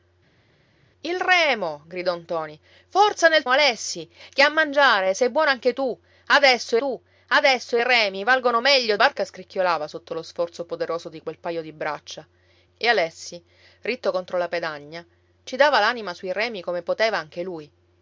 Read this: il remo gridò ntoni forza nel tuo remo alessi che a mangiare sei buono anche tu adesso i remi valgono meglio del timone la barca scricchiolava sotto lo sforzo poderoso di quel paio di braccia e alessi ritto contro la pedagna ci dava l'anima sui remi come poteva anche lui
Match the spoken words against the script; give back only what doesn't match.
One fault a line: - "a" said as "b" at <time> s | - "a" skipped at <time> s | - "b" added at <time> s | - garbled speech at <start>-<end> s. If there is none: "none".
- "tuo remo" skipped at 3.4 s
- "tu adesso" added at 6.8 s
- "del timone la" skipped at 9.0 s